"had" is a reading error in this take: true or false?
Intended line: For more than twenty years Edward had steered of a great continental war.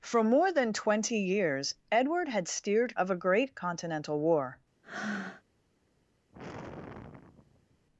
false